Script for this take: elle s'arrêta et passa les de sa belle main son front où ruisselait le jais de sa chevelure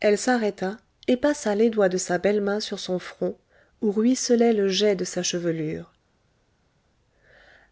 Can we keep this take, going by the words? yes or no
no